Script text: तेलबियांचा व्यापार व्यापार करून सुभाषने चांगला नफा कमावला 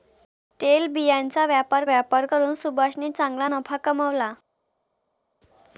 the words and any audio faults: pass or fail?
pass